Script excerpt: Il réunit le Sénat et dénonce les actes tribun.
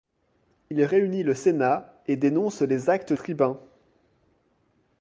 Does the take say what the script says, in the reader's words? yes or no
yes